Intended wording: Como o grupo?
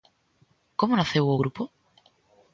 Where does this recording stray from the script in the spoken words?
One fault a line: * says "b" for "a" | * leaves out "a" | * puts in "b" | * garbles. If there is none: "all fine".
* puts in "naceu"